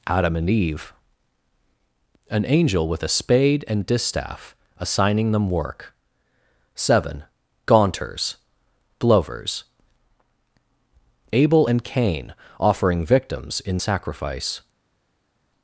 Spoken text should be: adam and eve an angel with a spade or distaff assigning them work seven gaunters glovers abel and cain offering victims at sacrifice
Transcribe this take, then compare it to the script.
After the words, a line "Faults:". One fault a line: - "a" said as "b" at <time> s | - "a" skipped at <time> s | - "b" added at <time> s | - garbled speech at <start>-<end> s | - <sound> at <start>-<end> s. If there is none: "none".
adam and eve an angel with a spade and distaff assigning them work seven gaunters glovers abel and cain offering victims in sacrifice
Faults:
- "or" said as "and" at 3.7 s
- "at" said as "in" at 13.6 s